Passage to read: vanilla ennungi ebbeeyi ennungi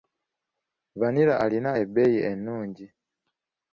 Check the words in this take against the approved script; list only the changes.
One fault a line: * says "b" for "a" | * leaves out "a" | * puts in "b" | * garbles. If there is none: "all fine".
* says "alina" for "ennungi"